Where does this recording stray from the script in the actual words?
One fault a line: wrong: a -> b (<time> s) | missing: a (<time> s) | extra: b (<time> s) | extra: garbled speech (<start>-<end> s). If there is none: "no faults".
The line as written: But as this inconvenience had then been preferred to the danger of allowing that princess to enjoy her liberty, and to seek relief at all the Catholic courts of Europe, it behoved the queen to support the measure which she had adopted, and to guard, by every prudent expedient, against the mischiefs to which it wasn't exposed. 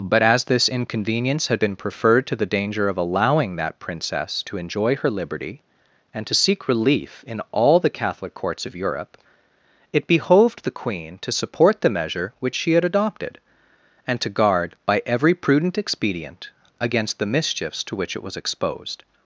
missing: then (1.6 s)
wrong: at -> in (7.3 s)
wrong: wasn't -> was (18.2 s)